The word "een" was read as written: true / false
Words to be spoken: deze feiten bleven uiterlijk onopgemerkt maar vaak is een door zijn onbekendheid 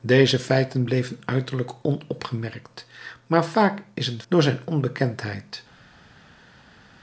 true